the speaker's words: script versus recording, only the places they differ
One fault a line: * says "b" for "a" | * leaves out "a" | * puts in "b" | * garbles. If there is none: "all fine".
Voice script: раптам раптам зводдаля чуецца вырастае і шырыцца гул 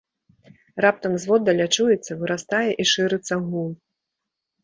* leaves out "раптам"